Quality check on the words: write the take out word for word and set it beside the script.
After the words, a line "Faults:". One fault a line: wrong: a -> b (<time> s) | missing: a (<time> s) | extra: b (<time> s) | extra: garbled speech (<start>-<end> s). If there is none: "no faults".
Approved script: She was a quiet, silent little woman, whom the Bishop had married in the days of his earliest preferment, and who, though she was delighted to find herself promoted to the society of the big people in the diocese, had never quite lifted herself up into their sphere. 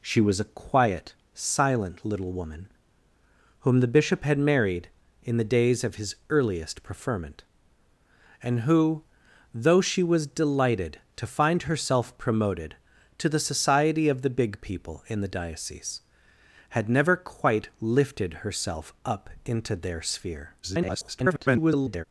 She was a quiet, silent little woman, whom the Bishop had married in the days of his earliest preferment, and who, though she was delighted to find herself promoted to the society of the big people in the diocese, had never quite lifted herself up into their sphere. [garbled]
Faults:
extra: garbled speech (20.6-22.0 s)